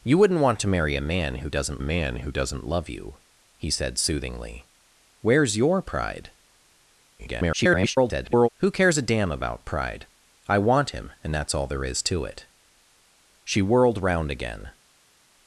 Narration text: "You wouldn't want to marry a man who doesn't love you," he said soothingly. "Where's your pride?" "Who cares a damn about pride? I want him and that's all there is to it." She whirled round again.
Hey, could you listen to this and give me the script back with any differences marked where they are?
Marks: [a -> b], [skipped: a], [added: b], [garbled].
"You wouldn't want to marry a man who doesn't [added: man who doesn't] love you," he said soothingly. "Where's your pride?" [garbled] "Who cares a damn about pride? I want him and that's all there is to it." She whirled round again.